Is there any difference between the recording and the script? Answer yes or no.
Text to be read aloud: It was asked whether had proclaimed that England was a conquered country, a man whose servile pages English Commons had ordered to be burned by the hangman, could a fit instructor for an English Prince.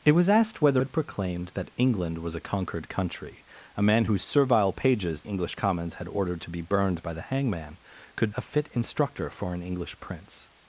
no